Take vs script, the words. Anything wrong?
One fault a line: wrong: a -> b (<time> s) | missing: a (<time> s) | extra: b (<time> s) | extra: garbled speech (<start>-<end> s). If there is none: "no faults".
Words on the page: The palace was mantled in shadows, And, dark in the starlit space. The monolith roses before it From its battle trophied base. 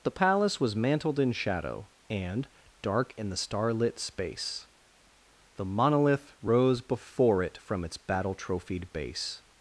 wrong: shadows -> shadow (1.3 s)
wrong: roses -> rose (6.4 s)